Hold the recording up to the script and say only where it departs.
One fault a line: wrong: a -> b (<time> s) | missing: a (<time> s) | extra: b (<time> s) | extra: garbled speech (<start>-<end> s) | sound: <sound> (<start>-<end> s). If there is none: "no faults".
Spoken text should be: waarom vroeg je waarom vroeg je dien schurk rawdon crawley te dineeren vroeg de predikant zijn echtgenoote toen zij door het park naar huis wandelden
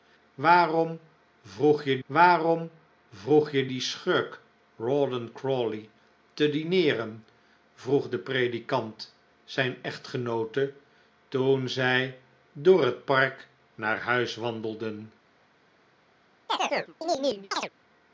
sound: chirp (16.5-17.7 s)